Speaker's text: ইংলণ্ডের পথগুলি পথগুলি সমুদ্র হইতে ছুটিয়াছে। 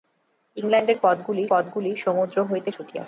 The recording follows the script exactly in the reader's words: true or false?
true